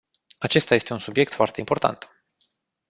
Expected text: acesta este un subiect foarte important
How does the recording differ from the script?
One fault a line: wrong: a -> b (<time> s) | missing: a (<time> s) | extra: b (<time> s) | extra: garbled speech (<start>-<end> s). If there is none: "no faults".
no faults